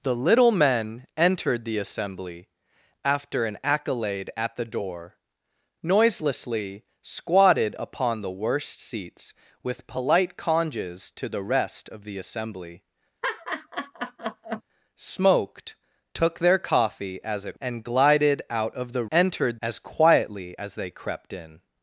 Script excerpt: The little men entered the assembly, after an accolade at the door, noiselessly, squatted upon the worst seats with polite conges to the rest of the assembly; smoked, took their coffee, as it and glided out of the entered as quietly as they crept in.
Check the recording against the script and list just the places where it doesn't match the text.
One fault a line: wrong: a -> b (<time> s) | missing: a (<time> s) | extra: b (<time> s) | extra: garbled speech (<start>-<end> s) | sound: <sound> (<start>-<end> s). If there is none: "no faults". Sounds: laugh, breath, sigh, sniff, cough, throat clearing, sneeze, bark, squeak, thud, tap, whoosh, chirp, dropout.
sound: laugh (13.2-14.6 s)